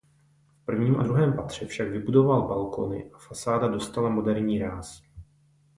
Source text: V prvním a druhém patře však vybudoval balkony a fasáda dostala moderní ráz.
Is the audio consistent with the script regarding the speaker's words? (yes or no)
yes